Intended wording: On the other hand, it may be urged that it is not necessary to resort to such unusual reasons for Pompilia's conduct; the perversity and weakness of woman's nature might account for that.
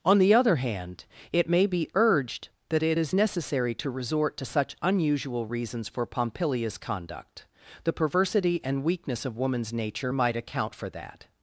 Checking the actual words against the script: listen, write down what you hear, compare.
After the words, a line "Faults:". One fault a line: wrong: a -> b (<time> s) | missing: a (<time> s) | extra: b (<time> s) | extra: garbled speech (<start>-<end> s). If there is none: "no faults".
On the other hand, it may be urged that it is necessary to resort to such unusual reasons for Pompilia's conduct; the perversity and weakness of woman's nature might account for that.
Faults:
missing: not (3.1 s)